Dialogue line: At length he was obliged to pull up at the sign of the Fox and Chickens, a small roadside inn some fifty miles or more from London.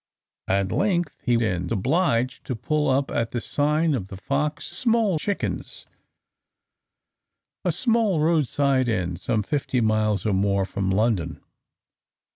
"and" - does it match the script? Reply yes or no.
no